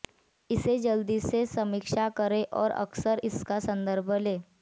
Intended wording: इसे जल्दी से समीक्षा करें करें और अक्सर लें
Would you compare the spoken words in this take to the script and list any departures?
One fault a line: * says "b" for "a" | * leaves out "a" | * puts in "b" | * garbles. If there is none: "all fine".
* leaves out "करें"
* puts in "इसका संदर्भ"